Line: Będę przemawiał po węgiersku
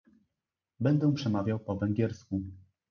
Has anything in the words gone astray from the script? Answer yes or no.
no